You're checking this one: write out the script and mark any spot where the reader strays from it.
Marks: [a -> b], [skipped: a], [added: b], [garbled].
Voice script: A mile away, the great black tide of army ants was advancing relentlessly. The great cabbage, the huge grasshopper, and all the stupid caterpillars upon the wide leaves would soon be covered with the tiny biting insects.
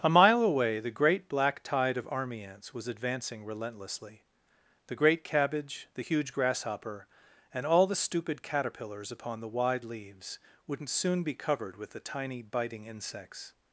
A mile away, the great black tide of army ants was advancing relentlessly. The great cabbage, the huge grasshopper, and all the stupid caterpillars upon the wide leaves [would -> wouldn't] soon be covered with the tiny biting insects.